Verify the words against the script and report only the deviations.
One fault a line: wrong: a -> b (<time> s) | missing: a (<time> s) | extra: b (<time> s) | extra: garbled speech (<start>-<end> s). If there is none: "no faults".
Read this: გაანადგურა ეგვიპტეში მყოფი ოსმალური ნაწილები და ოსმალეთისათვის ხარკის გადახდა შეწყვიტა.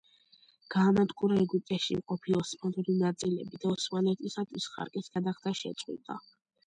no faults